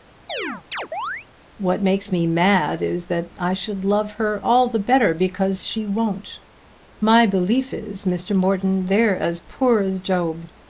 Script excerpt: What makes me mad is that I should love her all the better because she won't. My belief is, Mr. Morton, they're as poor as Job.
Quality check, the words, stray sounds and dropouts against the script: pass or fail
fail